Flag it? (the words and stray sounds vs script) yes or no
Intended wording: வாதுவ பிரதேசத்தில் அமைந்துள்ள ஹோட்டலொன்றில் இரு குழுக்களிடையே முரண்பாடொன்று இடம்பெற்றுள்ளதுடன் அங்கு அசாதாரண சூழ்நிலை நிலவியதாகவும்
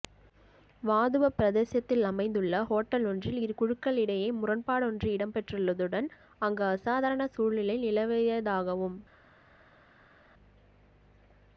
no